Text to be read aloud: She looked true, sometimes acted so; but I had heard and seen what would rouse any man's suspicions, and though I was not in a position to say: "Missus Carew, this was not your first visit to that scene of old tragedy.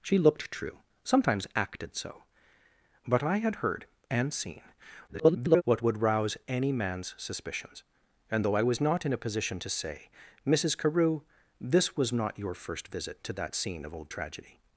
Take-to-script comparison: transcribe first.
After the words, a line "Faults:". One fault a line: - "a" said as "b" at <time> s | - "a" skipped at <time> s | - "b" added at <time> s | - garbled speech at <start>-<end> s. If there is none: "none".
She looked true, sometimes acted so; but I had heard and seen [garbled] what would rouse any man's suspicions, and though I was not in a position to say: "Missus Carew, this was not your first visit to that scene of old tragedy.
Faults:
- garbled speech at 5.1-5.6 s